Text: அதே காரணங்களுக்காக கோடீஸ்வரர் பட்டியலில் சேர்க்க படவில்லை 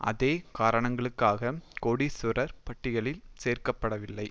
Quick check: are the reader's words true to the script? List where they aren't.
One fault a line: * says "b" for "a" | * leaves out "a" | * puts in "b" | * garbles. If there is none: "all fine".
all fine